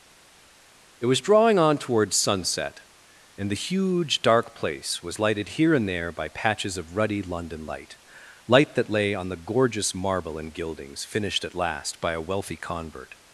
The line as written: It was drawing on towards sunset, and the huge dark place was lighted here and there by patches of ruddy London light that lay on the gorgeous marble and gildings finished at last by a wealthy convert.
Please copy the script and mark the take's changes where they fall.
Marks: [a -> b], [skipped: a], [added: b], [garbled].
It was drawing on towards sunset, and the huge dark place was lighted here and there by patches of ruddy London light [added: light] that lay on the gorgeous marble and gildings finished at last by a wealthy convert.